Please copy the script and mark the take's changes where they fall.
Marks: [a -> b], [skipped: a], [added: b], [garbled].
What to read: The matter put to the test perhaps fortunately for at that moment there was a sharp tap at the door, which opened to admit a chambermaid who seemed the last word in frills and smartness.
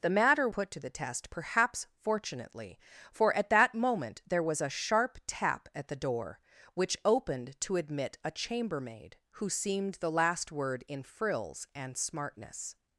The matter put to the test perhaps fortunately for at that moment there was a sharp tap at the door, which opened to admit a chambermaid who seemed the last word in frills and smartness.